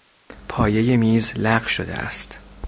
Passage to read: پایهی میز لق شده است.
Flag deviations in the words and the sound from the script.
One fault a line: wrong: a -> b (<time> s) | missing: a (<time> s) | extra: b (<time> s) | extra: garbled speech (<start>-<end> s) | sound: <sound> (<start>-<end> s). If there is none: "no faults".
no faults